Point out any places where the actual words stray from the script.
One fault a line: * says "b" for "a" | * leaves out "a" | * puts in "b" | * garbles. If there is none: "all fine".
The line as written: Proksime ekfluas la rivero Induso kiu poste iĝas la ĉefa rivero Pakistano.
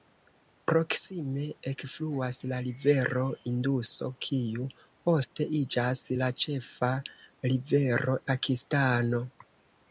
all fine